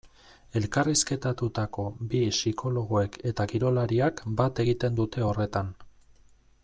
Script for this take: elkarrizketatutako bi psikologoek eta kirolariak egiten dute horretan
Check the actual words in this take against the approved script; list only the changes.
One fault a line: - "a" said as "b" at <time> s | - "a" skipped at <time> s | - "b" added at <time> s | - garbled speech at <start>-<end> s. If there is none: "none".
- "bat" added at 4.4 s